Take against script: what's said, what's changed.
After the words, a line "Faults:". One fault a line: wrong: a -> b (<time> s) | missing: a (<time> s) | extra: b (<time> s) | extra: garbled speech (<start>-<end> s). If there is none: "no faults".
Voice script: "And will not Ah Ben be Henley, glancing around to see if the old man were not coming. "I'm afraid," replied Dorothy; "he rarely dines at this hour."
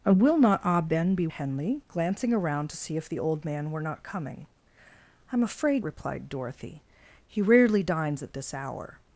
"And will not Ah Ben be Henley, glancing around to see if the old man were not coming. "I'm afraid," replied Dorothy; "he rarely dines at this hour."
Faults:
no faults